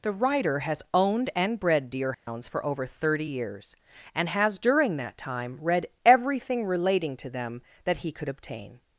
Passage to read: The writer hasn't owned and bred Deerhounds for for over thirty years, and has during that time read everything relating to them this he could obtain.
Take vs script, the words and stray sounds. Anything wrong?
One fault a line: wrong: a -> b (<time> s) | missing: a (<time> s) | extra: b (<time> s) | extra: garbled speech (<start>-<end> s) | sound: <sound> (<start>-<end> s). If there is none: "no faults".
wrong: hasn't -> has (0.6 s)
sound: dropout (2.1-2.3 s)
missing: for (2.6 s)
wrong: this -> that (7.8 s)